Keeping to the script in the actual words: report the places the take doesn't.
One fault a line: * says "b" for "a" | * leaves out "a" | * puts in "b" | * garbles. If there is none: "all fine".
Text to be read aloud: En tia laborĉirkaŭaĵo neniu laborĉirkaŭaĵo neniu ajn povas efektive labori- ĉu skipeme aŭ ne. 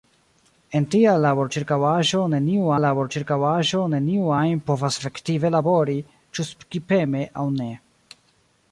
all fine